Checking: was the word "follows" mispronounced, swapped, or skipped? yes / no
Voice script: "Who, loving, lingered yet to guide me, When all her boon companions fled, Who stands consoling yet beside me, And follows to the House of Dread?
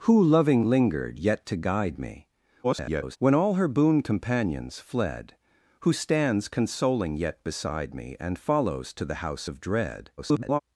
no